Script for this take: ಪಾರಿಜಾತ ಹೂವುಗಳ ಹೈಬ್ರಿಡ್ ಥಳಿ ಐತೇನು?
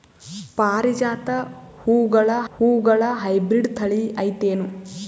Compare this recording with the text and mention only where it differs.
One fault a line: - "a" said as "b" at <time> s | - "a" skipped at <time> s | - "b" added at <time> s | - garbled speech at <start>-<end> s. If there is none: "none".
- "ಹೂವುಗಳ" added at 2.5 s